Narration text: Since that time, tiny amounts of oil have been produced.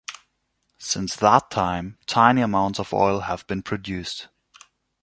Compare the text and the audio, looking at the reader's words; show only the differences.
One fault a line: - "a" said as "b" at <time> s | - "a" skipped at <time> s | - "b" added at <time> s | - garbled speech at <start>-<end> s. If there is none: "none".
none